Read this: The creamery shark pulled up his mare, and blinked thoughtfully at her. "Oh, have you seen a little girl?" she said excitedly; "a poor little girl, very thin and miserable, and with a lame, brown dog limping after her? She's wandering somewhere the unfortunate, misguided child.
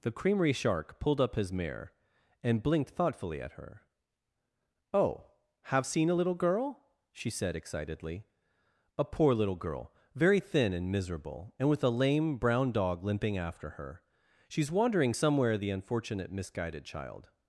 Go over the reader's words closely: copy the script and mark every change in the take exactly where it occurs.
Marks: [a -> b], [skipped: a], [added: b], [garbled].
The creamery shark pulled up his mare, and blinked thoughtfully at her. "Oh, have [skipped: you] seen a little girl?" she said excitedly; "a poor little girl, very thin and miserable, and with a lame, brown dog limping after her? She's wandering somewhere the unfortunate, misguided child.